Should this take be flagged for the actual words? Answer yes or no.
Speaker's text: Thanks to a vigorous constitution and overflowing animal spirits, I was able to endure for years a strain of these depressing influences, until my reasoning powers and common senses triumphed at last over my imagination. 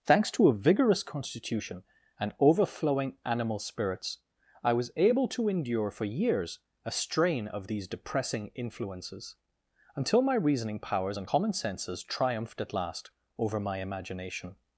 no